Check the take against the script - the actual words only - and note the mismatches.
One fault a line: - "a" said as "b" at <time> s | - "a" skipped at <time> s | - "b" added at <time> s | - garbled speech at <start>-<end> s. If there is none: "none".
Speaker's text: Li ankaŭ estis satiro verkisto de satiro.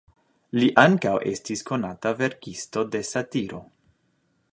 - "satiro" said as "konata" at 1.7 s